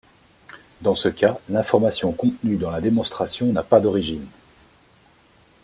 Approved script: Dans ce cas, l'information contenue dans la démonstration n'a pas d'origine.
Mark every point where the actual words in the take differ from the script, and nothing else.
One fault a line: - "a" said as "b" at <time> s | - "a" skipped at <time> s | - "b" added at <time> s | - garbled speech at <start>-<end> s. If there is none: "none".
none